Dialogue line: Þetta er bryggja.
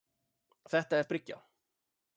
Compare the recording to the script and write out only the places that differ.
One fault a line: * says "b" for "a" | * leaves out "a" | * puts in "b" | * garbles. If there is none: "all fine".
all fine